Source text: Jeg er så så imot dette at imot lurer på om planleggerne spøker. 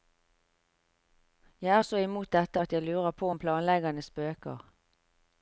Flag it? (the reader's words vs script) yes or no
yes